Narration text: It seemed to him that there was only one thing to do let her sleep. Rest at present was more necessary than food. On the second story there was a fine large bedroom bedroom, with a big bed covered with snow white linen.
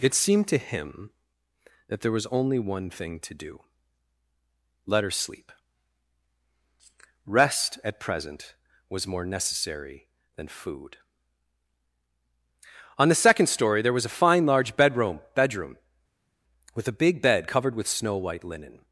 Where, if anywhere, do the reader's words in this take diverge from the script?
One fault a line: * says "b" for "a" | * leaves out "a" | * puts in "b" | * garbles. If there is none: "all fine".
all fine